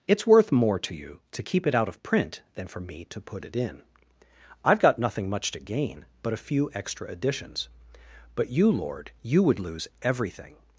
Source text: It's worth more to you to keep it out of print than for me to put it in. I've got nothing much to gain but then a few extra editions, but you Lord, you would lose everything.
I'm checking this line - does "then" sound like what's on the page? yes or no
no